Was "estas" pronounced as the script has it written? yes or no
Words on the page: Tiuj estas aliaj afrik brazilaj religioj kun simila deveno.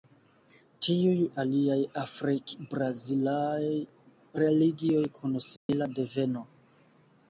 no